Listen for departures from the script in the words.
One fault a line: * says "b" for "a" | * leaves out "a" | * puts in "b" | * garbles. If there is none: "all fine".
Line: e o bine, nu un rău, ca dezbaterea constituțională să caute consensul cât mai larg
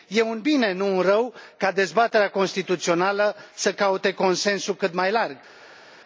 * says "un" for "o"